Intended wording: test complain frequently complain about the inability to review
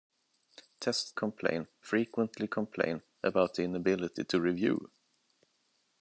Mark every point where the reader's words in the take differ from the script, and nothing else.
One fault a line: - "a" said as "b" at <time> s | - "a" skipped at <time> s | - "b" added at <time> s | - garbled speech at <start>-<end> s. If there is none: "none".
none